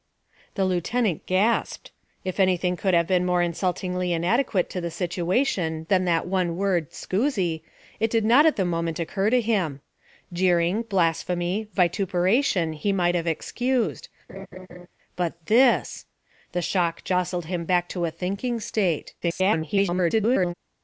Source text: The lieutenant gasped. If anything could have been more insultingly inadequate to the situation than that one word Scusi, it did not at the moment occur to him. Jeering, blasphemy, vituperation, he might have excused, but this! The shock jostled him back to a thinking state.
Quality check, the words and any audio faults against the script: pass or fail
fail